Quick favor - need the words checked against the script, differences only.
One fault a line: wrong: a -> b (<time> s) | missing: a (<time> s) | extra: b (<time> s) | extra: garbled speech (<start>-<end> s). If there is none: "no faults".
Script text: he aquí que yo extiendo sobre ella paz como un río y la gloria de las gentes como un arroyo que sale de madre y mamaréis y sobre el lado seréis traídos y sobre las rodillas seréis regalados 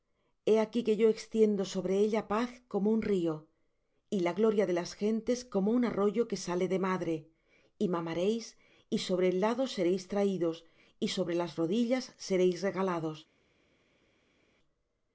no faults